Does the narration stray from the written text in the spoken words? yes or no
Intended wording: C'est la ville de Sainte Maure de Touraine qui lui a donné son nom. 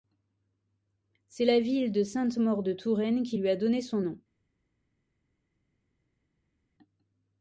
no